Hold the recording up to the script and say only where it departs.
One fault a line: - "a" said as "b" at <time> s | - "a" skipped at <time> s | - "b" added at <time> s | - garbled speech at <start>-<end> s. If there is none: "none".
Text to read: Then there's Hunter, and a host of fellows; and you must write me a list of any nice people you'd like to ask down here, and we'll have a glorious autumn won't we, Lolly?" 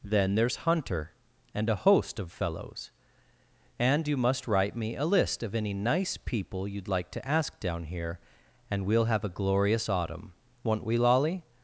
none